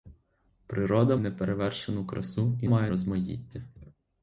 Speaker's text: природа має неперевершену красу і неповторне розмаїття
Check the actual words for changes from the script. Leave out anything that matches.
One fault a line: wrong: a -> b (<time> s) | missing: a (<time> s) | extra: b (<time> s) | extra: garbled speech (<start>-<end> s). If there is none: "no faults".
missing: має (1.1 s)
wrong: неповторне -> має (2.6 s)